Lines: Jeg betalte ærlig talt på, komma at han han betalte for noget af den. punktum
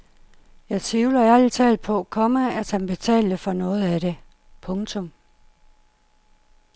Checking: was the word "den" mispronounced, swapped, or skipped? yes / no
yes